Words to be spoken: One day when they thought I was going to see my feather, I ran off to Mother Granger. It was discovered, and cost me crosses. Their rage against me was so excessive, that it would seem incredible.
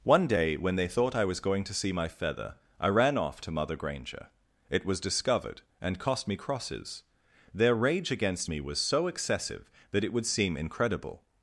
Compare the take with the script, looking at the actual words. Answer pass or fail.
pass